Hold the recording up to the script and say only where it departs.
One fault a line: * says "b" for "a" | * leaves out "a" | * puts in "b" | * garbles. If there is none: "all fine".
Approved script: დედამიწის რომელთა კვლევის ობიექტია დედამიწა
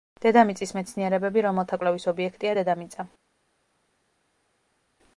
* puts in "მეცნიერებები"